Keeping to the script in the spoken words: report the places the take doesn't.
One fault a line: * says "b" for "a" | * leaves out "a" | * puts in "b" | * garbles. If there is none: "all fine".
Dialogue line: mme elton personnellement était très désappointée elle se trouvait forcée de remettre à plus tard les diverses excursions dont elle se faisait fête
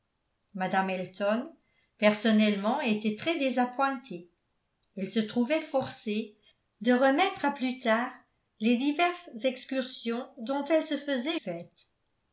all fine